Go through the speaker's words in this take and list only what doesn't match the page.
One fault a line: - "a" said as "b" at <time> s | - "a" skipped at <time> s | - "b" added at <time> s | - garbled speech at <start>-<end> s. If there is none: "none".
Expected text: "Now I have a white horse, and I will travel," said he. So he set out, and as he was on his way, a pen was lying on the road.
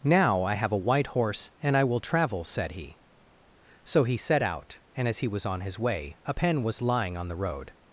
none